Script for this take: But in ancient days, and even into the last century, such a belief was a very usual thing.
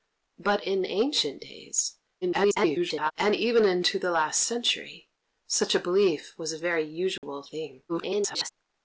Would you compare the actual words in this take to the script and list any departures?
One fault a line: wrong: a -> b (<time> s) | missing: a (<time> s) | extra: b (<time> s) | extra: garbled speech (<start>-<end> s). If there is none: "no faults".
extra: garbled speech (2.2-3.1 s)
extra: garbled speech (7.9-8.5 s)